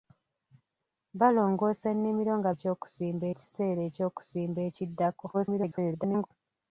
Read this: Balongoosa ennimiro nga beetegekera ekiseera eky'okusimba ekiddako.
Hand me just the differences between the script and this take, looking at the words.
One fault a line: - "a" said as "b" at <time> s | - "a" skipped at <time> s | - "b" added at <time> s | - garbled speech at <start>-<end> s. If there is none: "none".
- "beetegekera" said as "eky'okusimba" at 2.5 s
- garbled speech at 5.3-6.3 s